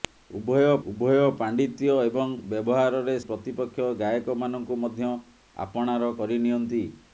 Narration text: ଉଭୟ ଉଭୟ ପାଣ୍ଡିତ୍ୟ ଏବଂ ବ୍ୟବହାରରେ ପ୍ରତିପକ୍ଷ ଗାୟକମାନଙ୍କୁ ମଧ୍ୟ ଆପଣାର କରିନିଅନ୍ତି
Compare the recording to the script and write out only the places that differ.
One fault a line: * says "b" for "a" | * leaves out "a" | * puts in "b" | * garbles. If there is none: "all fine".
all fine